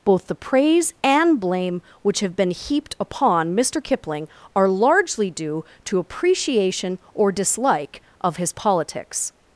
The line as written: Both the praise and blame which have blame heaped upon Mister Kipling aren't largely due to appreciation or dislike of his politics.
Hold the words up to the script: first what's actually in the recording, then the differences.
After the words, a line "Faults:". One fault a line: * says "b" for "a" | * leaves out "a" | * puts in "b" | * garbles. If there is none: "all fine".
Both the praise and blame which have been heaped upon Mister Kipling are largely due to appreciation or dislike of his politics.
Faults:
* says "been" for "blame"
* says "are" for "aren't"